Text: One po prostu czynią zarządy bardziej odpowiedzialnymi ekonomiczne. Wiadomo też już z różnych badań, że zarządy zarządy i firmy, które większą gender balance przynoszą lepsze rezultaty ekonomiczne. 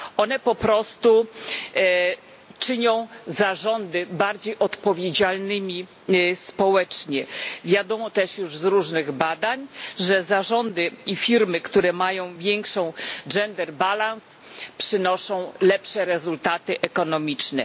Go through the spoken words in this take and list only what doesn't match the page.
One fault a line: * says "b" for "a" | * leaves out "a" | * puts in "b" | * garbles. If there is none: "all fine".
* says "społecznie" for "ekonomiczne"
* leaves out "zarządy"
* puts in "mają"